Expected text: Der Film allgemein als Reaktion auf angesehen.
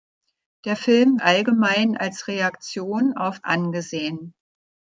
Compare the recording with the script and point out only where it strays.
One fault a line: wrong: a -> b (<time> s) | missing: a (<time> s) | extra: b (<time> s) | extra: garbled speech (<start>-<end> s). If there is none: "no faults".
no faults